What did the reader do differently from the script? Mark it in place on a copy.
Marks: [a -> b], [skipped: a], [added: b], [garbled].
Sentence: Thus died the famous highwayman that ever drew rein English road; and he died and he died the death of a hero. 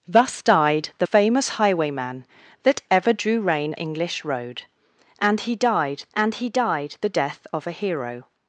Thus died the famous highwayman that ever drew rein English road; and he died and he died the death of a hero.